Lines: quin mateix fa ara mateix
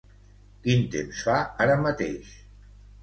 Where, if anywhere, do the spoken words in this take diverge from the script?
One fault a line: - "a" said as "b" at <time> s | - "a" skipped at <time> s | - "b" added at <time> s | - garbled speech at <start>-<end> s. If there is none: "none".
- "mateix" said as "temps" at 0.9 s